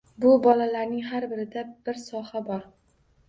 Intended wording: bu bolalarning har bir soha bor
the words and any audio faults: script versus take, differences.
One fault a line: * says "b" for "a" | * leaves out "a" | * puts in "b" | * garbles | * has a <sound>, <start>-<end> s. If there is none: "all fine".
* puts in "birida"